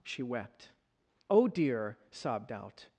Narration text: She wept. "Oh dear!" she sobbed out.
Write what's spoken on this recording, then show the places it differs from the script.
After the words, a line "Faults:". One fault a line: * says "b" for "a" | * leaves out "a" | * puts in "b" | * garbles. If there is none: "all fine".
She wept. "Oh dear!" sobbed out.
Faults:
* leaves out "she"